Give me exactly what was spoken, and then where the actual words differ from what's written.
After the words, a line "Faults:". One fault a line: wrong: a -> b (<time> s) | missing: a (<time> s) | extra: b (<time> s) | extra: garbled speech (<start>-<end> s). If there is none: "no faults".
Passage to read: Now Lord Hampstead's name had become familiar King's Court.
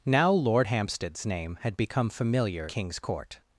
Now Lord Hampstead's name had become familiar King's Court.
Faults:
no faults